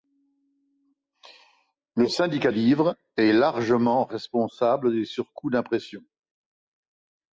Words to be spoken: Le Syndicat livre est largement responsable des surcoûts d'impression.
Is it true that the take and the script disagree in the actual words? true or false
false